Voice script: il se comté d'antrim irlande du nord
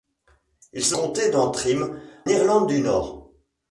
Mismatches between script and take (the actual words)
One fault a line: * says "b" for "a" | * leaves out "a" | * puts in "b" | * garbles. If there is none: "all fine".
all fine